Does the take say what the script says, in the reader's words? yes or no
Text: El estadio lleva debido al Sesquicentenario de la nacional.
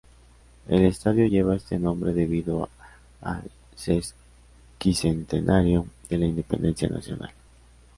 no